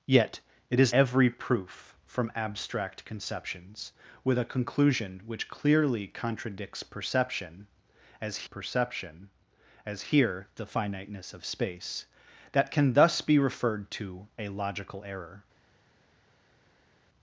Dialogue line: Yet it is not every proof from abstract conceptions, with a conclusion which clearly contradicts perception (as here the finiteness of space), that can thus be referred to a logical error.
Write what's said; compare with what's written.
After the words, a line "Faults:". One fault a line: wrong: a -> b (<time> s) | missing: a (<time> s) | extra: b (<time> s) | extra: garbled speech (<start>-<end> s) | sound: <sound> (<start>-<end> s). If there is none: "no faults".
Yet it is every proof from abstract conceptions, with a conclusion which clearly contradicts perception (as perception as here the finiteness of space), that can thus be referred to a logical error.
Faults:
missing: not (0.9 s)
extra: perception as (8.4 s)